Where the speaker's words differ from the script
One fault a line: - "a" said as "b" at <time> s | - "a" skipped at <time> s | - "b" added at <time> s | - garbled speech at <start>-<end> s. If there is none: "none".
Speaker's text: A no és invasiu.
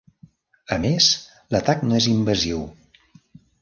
- "més l'atac" added at 0.8 s